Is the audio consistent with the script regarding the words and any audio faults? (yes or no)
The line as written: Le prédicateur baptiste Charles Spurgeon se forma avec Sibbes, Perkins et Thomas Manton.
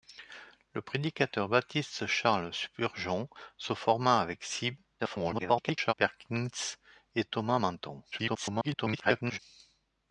no